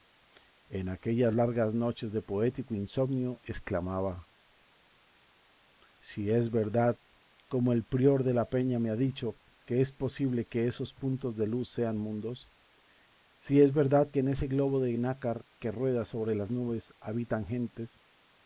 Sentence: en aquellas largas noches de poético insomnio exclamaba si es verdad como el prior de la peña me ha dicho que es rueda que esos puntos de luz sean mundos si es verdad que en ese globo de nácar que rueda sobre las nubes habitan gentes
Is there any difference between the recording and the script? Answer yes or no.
yes